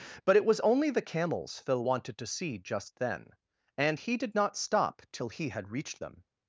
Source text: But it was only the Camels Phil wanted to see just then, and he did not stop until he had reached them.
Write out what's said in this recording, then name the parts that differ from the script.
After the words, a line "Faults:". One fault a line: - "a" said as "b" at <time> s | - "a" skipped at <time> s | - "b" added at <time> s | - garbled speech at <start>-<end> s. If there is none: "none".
But it was only the Camels Phil wanted to see just then, and he did not stop till he had reached them.
Faults:
- "until" said as "till" at 5.1 s